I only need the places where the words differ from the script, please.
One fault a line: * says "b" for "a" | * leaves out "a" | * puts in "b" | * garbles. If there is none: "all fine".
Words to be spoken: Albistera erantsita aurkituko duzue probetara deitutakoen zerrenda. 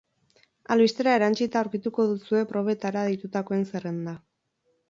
all fine